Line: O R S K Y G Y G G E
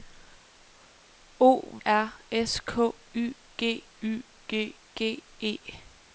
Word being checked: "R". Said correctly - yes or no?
yes